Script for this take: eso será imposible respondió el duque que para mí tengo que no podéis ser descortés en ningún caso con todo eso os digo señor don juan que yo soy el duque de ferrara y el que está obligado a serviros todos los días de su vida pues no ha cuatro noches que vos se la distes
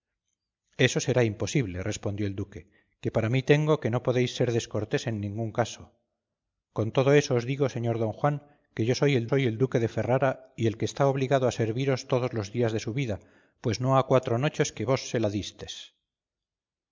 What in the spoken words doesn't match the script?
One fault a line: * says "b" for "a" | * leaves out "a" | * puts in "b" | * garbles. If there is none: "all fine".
* puts in "soy el"